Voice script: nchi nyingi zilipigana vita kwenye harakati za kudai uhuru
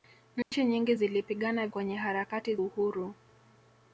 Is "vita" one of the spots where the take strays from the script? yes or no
yes